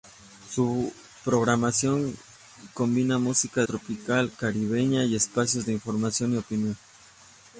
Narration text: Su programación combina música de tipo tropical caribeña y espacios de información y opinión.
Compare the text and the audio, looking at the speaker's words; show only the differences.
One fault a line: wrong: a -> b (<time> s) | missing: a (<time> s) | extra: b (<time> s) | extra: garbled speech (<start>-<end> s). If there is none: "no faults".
missing: de tipo (3.6 s)